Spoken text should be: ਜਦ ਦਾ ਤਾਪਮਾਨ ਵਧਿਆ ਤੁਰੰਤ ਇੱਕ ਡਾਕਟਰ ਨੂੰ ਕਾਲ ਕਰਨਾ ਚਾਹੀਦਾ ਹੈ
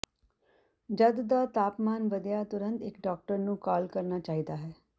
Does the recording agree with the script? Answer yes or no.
yes